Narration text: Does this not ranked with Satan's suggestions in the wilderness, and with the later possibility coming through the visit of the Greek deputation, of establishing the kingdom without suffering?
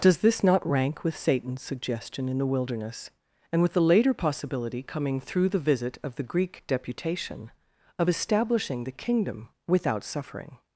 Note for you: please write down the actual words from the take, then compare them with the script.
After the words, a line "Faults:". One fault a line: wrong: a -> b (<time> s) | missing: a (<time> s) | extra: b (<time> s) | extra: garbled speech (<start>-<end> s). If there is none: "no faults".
Does this not rank with Satan's suggestion in the wilderness, and with the later possibility coming through the visit of the Greek deputation, of establishing the kingdom without suffering?
Faults:
wrong: ranked -> rank (0.7 s)
wrong: suggestions -> suggestion (1.6 s)